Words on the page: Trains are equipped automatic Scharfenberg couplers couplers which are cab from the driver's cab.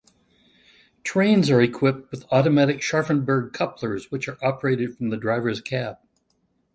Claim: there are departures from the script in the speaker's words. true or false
true